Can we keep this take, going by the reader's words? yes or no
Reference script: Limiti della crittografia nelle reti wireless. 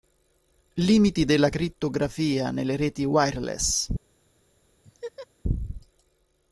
yes